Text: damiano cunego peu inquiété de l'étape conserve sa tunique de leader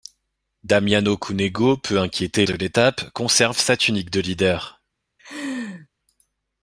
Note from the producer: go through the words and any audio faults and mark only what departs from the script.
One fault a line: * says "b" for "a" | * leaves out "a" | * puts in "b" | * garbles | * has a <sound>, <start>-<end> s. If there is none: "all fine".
* has a laugh, 5.2-5.9 s